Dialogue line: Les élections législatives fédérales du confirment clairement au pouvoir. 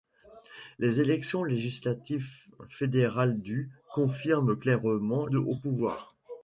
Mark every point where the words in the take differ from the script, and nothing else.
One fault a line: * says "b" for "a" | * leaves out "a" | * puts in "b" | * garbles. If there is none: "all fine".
all fine